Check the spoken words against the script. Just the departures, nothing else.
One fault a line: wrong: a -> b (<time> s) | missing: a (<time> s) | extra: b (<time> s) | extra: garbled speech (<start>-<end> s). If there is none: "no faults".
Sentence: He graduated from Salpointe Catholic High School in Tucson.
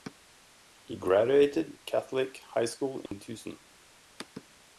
missing: from Salpointe (1.8 s)